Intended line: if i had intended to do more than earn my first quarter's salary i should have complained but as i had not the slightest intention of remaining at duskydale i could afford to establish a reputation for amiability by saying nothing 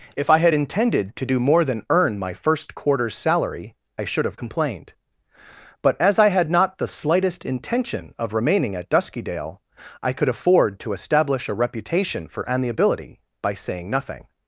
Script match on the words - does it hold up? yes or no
yes